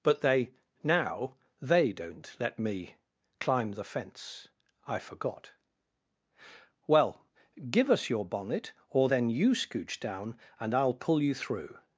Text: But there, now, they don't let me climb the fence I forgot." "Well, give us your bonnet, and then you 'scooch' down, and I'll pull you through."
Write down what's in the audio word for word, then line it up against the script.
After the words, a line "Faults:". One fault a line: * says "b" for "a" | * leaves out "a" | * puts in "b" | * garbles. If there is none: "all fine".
But they, now, they don't let me climb the fence I forgot." "Well, give us your bonnet, or then you 'scooch' down, and I'll pull you through."
Faults:
* says "they" for "there"
* says "or" for "and"